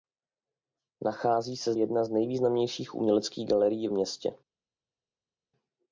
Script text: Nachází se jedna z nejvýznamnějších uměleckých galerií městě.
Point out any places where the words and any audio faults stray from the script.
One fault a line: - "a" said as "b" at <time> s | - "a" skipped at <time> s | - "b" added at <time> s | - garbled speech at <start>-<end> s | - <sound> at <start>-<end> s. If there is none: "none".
none